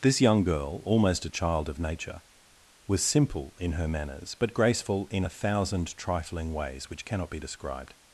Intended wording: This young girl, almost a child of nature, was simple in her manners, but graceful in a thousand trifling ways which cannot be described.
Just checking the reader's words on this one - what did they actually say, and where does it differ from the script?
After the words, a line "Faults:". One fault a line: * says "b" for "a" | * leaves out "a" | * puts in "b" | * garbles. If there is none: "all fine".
This young girl, almost a child of nature, was simple in her manners, but graceful in a thousand trifling ways which cannot be described.
Faults:
all fine